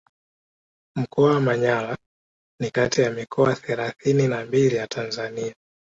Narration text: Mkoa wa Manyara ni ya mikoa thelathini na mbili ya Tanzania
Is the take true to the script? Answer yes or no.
no